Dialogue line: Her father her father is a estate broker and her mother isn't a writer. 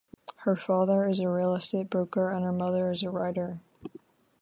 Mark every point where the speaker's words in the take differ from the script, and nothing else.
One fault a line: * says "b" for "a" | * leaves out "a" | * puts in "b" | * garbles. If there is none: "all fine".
* leaves out "her father"
* puts in "real"
* says "is" for "isn't"